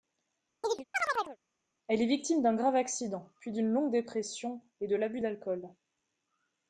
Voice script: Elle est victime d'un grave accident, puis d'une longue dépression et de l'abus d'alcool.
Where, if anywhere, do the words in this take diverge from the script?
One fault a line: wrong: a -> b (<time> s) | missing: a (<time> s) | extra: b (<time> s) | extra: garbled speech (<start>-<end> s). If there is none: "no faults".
no faults